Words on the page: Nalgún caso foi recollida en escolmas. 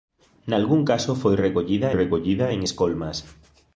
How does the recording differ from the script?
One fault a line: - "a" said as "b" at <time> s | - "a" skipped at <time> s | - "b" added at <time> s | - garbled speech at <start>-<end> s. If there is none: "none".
- "recollida" added at 2.0 s